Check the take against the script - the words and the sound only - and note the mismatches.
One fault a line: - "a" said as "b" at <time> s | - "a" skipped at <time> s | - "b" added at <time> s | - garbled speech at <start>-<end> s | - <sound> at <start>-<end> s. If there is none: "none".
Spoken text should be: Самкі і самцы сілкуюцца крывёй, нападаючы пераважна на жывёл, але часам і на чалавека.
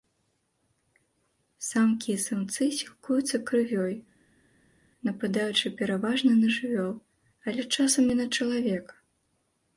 none